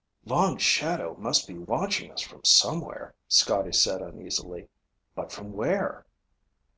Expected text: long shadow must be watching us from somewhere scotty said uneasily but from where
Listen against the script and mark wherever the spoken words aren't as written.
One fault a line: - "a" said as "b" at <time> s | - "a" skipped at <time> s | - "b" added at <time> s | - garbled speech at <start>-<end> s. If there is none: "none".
none